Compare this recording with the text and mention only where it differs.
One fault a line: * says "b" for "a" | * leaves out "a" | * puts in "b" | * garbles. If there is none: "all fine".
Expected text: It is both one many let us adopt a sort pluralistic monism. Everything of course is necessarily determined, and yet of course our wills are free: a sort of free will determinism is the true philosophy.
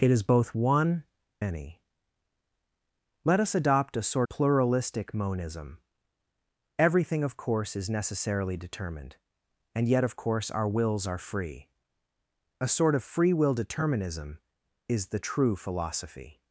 all fine